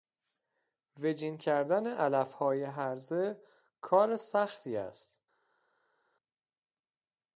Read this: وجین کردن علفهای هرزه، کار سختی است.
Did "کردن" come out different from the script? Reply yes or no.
no